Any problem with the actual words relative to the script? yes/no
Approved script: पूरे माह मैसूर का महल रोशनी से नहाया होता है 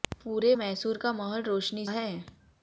yes